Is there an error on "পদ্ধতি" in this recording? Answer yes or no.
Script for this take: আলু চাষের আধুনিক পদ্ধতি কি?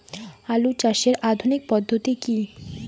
no